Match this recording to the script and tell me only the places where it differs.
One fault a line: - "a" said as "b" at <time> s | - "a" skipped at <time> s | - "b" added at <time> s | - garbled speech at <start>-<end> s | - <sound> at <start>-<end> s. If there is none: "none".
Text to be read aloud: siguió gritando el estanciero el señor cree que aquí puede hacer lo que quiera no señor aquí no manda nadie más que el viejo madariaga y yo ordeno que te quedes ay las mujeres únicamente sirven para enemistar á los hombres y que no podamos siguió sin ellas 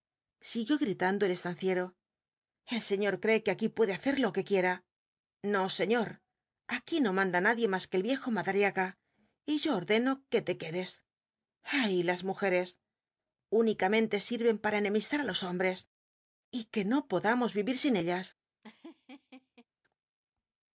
- "siguió" said as "vivir" at 17.6 s
- laugh at 18.6-19.7 s